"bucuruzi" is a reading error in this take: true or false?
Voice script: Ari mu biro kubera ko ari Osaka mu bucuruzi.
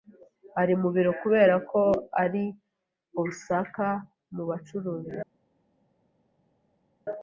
false